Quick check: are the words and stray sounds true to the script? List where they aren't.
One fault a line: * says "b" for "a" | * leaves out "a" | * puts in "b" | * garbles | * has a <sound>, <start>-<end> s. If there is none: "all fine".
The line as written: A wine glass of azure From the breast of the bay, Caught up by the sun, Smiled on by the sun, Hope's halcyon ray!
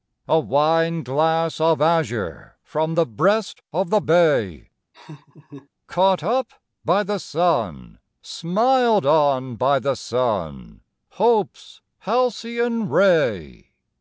* has a laugh, 4.9-5.7 s